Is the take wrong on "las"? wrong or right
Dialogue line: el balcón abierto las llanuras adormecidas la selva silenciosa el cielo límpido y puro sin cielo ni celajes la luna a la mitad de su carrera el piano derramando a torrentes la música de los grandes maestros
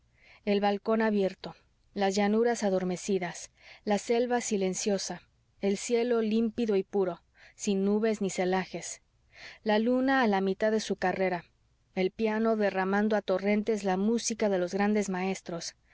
right